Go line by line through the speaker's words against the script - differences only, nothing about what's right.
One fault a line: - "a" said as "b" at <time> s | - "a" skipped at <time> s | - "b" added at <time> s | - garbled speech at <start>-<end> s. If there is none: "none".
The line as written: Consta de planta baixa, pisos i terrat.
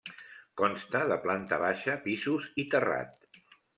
none